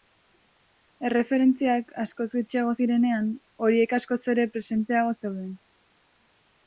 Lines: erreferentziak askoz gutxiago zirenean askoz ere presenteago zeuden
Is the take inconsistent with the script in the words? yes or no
yes